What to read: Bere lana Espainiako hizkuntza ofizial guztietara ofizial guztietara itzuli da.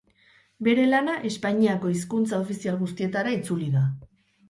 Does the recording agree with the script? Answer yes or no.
no